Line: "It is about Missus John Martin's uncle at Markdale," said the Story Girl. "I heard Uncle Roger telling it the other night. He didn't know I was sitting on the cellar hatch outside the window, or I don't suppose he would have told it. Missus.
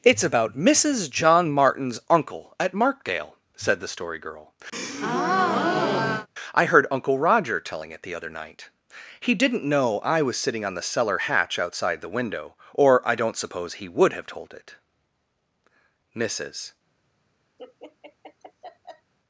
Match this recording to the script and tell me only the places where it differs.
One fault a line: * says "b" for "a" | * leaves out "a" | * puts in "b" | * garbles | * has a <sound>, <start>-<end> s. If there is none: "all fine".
* has a breath, 4.7-6.3 s
* has a laugh, 17.6-19.1 s